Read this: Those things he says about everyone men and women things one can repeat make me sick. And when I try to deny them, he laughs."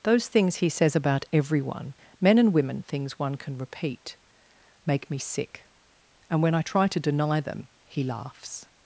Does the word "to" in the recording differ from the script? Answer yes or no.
no